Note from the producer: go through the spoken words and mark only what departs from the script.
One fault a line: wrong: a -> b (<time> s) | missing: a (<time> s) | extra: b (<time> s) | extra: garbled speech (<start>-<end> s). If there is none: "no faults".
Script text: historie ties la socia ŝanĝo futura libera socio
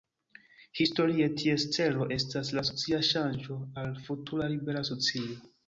extra: celo estas (1.8 s)
extra: al (3.8 s)